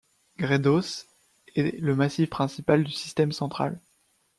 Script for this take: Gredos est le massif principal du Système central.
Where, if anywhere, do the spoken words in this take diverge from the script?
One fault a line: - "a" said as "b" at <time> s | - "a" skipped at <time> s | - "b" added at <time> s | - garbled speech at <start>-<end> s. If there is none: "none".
none